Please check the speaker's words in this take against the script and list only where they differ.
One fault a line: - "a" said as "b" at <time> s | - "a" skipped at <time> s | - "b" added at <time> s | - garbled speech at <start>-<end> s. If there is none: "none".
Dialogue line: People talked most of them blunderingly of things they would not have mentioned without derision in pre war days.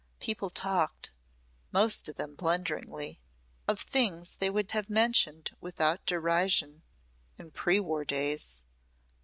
- "not" skipped at 4.7 s